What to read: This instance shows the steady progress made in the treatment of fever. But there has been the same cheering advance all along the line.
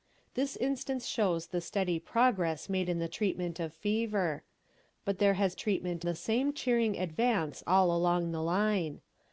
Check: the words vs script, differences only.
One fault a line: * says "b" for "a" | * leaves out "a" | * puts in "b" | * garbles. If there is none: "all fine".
* says "treatment" for "been"